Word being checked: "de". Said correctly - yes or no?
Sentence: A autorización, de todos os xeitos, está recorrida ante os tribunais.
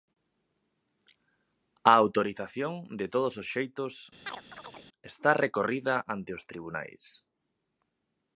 yes